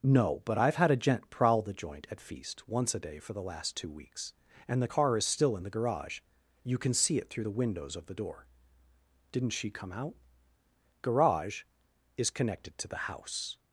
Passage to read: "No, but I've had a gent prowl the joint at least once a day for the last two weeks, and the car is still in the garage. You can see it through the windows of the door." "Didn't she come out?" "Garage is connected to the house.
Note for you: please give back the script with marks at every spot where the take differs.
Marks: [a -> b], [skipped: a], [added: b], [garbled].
"No, but I've had a gent prowl the joint at [least -> feast] once a day for the last two weeks, and the car is still in the garage. You can see it through the windows of the door." "Didn't she come out?" "Garage is connected to the house.